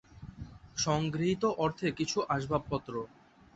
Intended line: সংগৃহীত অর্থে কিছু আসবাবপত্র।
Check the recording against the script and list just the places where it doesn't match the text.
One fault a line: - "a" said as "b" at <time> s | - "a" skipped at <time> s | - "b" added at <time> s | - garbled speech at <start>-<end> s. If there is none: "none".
none